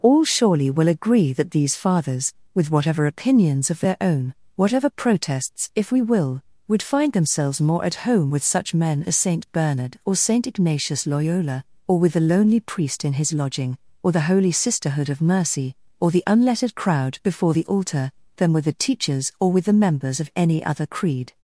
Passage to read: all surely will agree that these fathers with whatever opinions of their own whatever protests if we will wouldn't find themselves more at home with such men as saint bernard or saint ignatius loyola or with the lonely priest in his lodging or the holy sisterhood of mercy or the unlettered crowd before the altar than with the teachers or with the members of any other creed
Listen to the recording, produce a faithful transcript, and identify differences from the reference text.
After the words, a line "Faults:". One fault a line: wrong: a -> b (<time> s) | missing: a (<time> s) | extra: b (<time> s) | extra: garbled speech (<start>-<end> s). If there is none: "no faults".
all surely will agree that these fathers with whatever opinions of their own whatever protests if we will would find themselves more at home with such men as saint bernard or saint ignatius loyola or with the lonely priest in his lodging or the holy sisterhood of mercy or the unlettered crowd before the altar than with the teachers or with the members of any other creed
Faults:
wrong: wouldn't -> would (6.7 s)